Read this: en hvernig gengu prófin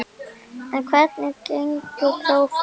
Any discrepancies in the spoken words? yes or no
no